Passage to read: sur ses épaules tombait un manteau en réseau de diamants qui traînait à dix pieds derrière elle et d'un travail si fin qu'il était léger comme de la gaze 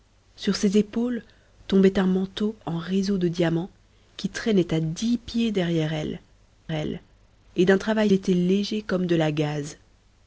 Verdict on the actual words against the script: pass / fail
fail